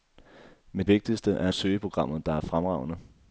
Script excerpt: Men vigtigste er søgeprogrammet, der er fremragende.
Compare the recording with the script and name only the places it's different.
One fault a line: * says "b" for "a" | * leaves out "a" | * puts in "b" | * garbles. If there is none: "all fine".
all fine